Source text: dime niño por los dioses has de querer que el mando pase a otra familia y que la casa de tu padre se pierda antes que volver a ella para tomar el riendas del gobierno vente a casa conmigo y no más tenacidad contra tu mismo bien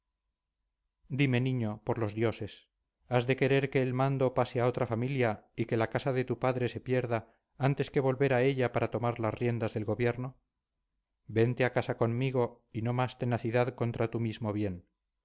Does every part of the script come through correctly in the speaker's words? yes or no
no